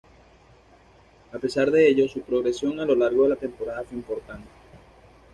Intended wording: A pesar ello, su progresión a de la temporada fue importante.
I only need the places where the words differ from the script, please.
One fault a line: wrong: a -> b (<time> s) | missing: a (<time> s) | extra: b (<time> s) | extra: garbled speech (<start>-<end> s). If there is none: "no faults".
extra: de (1.7 s)
extra: lo largo (2.8 s)